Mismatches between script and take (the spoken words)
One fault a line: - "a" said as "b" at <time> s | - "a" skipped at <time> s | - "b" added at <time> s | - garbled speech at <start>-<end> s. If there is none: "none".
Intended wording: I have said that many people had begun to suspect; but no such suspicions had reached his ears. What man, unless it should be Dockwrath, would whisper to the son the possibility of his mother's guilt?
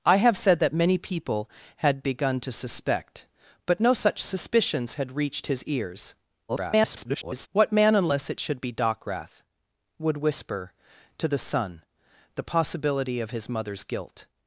- garbled speech at 6.5-7.5 s